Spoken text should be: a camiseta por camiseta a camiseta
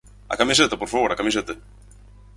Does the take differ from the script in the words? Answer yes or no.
yes